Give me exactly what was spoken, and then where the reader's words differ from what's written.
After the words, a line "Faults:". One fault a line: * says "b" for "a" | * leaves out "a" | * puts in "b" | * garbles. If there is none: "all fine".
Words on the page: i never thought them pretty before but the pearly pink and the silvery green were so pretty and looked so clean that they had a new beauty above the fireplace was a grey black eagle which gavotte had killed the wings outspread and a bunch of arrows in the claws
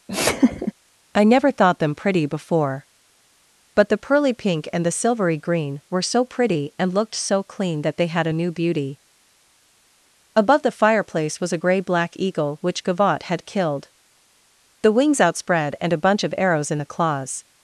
i never thought them pretty before but the pearly pink and the silvery green were so pretty and looked so clean that they had a new beauty above the fireplace was a grey black eagle which gavotte had killed the wings outspread and a bunch of arrows in the claws
Faults:
all fine